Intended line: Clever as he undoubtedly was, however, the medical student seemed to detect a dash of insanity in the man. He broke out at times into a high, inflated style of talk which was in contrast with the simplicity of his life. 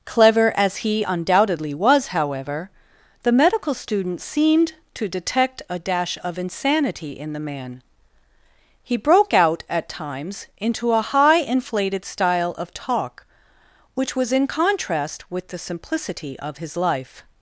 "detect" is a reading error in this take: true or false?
false